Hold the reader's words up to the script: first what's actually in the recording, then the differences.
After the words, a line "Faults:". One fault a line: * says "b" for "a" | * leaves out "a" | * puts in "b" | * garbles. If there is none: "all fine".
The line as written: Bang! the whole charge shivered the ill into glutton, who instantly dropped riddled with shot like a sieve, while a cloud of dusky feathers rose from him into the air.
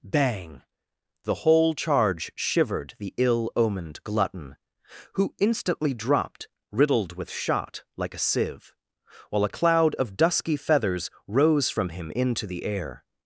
Bang! the whole charge shivered the ill omened glutton, who instantly dropped riddled with shot like a sieve, while a cloud of dusky feathers rose from him into the air.
Faults:
* says "omened" for "into"